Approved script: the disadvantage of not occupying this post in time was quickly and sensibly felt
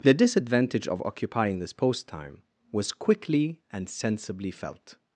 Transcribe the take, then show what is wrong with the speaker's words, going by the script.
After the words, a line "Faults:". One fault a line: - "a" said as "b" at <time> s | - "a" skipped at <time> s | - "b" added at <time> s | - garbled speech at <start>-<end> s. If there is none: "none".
the disadvantage of occupying this post time was quickly and sensibly felt
Faults:
- "not" skipped at 1.0 s
- "in" skipped at 2.1 s